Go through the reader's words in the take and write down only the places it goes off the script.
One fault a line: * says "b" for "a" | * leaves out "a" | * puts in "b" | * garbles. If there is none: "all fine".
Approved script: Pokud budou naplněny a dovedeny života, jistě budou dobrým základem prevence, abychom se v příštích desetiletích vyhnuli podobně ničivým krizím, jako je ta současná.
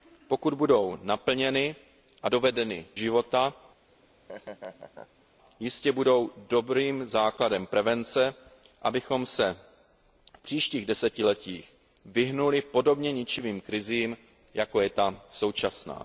all fine